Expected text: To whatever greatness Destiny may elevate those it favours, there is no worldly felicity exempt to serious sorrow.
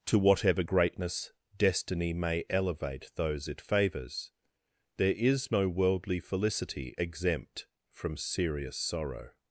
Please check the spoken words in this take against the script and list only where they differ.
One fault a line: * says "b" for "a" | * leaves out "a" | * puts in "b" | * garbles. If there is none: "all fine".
* says "from" for "to"